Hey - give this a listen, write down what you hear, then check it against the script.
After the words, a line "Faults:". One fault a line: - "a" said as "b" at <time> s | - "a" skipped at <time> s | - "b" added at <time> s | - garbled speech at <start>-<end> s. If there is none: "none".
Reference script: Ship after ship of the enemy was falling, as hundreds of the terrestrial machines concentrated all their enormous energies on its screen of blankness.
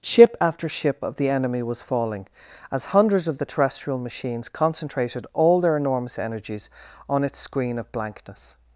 Ship after ship of the enemy was falling, as hundreds of the terrestrial machines concentrated all their enormous energies on its screen of blankness.
Faults:
none